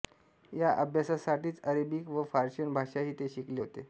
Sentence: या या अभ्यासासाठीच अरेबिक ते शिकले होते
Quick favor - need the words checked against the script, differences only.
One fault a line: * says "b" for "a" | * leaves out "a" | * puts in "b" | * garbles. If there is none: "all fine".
* leaves out "या"
* puts in "व पर्शियन भाषाही"